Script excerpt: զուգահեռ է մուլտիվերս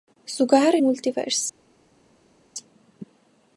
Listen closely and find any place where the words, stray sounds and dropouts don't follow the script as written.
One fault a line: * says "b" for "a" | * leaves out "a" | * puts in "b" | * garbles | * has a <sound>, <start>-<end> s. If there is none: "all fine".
all fine